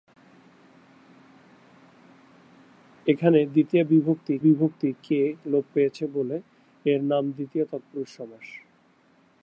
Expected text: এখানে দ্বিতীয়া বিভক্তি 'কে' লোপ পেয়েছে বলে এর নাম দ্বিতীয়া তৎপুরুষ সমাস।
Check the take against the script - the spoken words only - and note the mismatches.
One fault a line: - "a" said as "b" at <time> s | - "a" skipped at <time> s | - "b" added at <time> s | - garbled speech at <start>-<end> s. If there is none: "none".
- "বিভক্তি" added at 4.4 s